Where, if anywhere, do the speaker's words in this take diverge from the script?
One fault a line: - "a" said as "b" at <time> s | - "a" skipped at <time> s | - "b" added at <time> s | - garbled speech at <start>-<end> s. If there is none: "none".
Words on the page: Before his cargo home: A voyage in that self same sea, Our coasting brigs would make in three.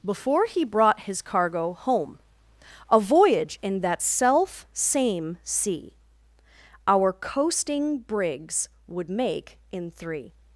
- "he brought" added at 0.5 s